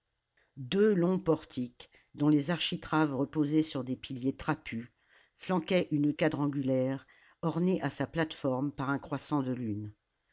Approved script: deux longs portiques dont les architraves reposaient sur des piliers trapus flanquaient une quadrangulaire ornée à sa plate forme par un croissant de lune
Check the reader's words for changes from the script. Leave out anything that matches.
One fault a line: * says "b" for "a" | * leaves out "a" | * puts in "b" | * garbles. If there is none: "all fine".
all fine